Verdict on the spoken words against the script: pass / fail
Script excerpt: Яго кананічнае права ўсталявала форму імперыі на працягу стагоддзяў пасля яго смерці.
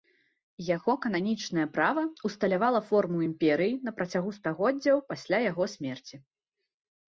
pass